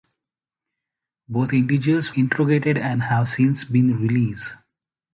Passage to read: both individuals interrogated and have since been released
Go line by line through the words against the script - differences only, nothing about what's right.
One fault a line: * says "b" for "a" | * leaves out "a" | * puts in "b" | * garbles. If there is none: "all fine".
all fine